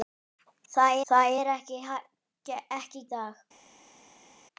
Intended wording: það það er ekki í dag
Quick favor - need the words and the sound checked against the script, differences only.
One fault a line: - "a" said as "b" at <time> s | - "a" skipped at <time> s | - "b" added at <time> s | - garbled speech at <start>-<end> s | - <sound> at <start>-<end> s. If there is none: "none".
none